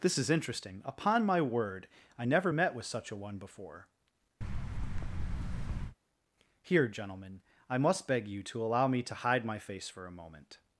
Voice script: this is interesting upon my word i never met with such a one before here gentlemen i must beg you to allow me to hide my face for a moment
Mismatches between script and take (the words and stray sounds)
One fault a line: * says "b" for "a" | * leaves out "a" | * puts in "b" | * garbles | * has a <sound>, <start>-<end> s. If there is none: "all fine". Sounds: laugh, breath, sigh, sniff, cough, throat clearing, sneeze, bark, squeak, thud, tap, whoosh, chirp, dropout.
* has a thud, 4.4-6.0 s